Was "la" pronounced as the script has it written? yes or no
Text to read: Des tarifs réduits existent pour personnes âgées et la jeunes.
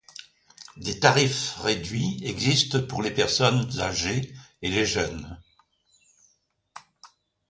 no